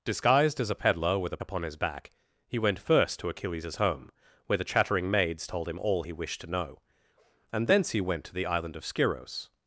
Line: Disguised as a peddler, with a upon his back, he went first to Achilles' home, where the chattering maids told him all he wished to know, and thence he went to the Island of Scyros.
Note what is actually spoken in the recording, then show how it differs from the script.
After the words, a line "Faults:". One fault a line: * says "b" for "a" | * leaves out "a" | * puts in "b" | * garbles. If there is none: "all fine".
Disguised as a peddler, with a upon his back, he went first to Achilles' home, where the chattering maids told him all he wished to know, and thence he went to the Island of Scyros.
Faults:
all fine